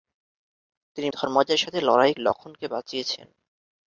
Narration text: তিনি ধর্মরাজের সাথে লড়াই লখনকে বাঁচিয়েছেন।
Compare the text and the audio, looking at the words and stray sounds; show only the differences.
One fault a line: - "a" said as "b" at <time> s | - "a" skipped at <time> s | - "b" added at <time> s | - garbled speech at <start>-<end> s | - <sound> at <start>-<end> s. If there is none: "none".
none